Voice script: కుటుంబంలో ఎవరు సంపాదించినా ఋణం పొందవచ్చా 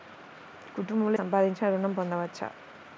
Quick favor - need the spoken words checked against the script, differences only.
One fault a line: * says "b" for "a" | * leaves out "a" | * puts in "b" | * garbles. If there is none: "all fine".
* leaves out "ఎవరు"